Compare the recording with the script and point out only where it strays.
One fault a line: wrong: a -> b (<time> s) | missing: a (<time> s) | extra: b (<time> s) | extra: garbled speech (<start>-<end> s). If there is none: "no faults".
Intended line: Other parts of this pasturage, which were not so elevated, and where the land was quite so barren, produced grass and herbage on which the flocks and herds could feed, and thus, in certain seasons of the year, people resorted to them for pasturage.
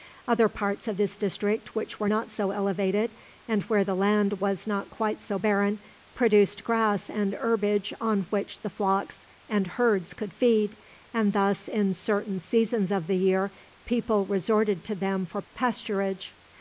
wrong: pasturage -> district (1.1 s)
extra: not (4.7 s)